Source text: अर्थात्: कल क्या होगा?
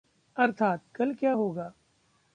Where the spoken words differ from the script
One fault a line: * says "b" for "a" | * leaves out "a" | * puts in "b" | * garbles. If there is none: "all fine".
all fine